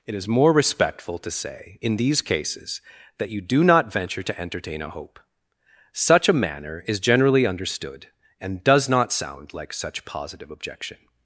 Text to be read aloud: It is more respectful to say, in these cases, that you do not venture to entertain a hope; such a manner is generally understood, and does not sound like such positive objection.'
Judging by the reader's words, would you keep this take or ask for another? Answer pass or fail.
pass